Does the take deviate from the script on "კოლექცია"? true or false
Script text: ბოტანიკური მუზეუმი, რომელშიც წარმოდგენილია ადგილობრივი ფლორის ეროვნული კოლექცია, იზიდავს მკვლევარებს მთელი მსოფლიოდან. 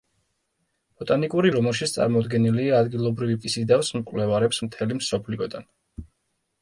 true